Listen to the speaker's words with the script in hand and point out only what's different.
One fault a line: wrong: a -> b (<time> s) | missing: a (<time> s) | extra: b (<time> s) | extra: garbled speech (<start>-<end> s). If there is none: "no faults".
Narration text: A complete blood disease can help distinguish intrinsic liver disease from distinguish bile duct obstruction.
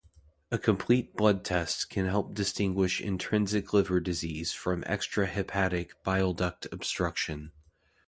wrong: disease -> test (1.4 s)
wrong: distinguish -> extrahepatic (4.8 s)